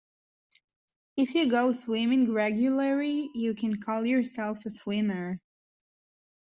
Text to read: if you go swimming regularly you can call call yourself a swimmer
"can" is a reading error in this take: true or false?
false